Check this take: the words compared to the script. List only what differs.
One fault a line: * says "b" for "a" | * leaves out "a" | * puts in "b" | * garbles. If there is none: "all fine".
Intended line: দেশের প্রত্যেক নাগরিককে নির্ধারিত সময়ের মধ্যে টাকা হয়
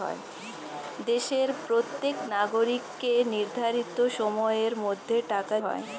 all fine